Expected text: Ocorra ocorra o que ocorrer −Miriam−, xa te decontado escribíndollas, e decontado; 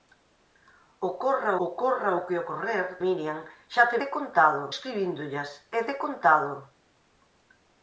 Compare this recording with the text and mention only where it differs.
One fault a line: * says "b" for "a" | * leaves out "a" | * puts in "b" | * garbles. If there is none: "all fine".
all fine